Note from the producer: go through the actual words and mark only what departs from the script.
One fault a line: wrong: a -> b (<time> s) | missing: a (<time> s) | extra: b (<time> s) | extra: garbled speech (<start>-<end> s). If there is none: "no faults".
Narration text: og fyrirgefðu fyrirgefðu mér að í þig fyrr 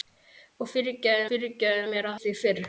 no faults